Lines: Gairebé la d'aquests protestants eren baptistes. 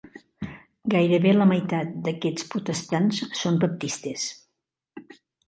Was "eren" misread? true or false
true